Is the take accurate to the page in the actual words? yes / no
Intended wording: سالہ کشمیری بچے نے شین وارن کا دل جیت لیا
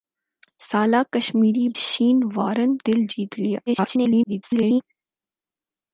no